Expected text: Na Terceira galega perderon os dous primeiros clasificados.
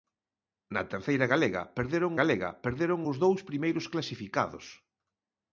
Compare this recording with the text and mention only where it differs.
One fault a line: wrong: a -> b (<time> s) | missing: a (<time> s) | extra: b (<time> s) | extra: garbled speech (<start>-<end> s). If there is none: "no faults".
extra: galega perderon (2.2 s)